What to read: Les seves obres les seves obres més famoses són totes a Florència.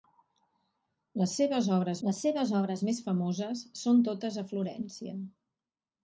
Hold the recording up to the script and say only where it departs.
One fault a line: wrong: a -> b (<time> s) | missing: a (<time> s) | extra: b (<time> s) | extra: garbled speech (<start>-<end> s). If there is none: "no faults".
no faults